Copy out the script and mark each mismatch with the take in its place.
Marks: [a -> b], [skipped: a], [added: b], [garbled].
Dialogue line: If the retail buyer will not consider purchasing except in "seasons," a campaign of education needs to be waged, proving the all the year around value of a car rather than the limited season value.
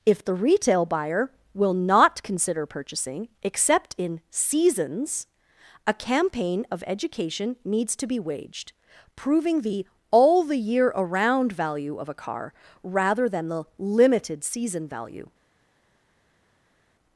If the retail buyer will not consider purchasing except in "seasons," a campaign of education needs to be waged, proving the all the year around value of a car rather than the limited season value.